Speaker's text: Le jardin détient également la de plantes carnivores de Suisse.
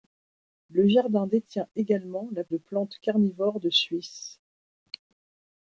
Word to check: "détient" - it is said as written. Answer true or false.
true